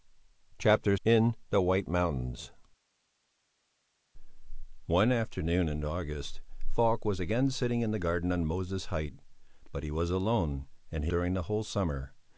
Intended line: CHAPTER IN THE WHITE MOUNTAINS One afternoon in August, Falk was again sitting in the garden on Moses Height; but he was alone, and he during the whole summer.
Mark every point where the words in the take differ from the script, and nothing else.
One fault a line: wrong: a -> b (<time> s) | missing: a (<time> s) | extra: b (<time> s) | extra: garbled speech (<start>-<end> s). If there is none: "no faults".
no faults